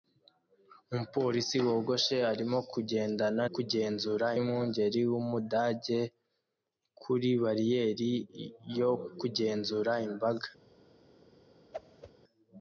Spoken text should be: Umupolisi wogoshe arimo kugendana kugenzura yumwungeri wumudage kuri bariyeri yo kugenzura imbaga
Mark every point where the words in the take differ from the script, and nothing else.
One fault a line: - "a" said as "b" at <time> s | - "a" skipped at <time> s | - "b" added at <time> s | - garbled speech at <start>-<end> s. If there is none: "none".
none